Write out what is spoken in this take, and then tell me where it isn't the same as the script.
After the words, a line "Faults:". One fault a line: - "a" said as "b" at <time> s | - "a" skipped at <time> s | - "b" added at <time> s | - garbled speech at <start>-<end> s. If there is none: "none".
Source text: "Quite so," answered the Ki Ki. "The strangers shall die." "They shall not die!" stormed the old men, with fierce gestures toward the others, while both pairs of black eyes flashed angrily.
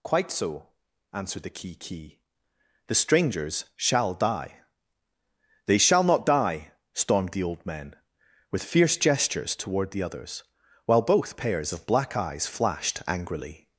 "Quite so," answered the Ki Ki. "The strangers shall die." "They shall not die!" stormed the old men, with fierce gestures toward the others, while both pairs of black eyes flashed angrily.
Faults:
none